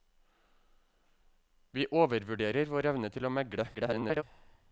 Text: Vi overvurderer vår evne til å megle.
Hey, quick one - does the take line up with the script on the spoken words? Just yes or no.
no